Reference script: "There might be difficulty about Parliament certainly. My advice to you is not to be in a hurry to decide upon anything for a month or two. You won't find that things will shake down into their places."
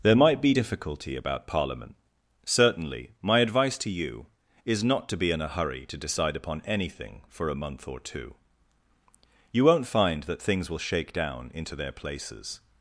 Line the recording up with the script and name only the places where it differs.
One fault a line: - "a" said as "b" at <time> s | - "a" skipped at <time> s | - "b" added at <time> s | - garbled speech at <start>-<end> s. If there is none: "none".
none